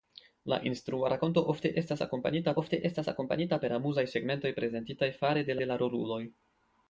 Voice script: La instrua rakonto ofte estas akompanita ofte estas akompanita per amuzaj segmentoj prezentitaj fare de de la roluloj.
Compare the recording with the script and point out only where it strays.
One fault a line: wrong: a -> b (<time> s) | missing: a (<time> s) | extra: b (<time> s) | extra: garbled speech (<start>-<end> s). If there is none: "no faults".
no faults